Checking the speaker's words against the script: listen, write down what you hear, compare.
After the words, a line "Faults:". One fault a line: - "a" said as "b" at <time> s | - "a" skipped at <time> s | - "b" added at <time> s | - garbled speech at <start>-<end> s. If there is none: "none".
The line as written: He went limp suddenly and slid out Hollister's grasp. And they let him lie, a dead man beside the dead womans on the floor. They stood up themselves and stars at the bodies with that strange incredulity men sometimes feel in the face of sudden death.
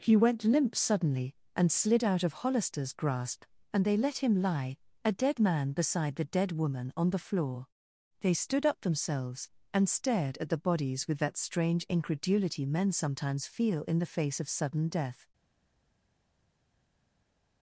He went limp suddenly and slid out of Hollister's grasp. And they let him lie, a dead man beside the dead woman on the floor. They stood up themselves and stared at the bodies with that strange incredulity men sometimes feel in the face of sudden death.
Faults:
- "of" added at 2.2 s
- "womans" said as "woman" at 6.5 s
- "stars" said as "stared" at 9.9 s